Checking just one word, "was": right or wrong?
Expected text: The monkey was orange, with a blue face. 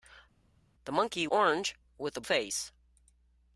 wrong